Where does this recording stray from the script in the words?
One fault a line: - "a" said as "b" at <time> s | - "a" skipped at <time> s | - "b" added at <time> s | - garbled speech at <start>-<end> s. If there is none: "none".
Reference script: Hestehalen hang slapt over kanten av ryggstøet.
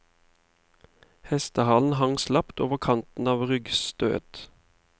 none